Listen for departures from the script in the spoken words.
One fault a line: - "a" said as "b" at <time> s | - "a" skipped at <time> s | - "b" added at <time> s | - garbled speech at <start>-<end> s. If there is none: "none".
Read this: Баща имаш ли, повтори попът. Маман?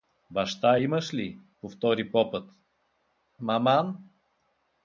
none